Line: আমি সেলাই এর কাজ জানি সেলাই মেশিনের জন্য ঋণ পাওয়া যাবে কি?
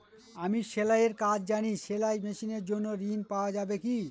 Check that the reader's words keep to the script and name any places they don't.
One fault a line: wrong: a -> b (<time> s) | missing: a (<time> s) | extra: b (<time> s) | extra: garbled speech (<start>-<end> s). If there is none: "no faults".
no faults